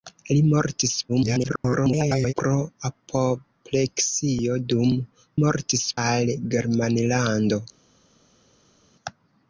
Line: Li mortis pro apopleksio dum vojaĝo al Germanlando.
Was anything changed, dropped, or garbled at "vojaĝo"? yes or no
yes